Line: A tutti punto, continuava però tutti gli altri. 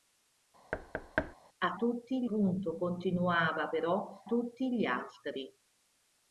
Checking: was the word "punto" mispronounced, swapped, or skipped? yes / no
no